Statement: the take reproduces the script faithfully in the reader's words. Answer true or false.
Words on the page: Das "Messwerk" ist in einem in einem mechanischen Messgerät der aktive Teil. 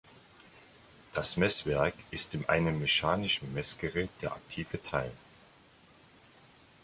false